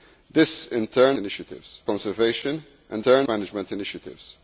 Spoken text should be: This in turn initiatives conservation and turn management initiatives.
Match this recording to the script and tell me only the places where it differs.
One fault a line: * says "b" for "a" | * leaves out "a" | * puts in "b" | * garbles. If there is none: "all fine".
all fine